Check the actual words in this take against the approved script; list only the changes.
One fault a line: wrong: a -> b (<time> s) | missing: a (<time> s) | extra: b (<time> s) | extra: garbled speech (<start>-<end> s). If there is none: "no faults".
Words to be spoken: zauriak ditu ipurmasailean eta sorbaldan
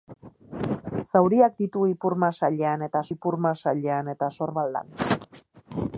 extra: ipurmasailean eta (3.1 s)